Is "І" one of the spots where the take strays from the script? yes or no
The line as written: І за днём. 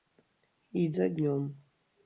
no